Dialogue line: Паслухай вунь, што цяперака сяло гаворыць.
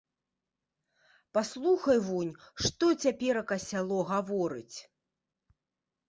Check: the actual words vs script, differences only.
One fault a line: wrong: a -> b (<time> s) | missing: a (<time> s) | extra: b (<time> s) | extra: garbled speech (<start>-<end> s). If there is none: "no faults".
no faults